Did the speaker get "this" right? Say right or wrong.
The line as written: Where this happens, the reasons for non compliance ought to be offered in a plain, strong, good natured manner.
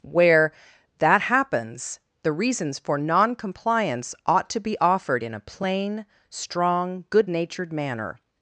wrong